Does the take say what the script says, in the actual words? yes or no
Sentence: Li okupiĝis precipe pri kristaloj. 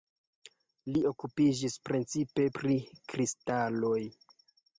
yes